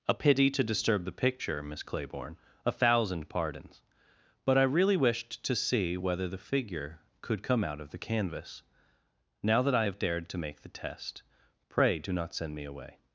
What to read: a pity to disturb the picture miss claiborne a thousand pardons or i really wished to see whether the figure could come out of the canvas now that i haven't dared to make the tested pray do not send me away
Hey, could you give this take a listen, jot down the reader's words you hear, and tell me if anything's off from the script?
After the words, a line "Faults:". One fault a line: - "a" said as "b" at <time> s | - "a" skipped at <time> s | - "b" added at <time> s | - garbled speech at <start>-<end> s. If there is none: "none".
a pity to disturb the picture miss claiborne a thousand pardons but i really wished to see whether the figure could come out of the canvas now that i have dared to make the test pray do not send me away
Faults:
- "or" said as "but" at 4.4 s
- "haven't" said as "have" at 9.8 s
- "tested" said as "test" at 10.7 s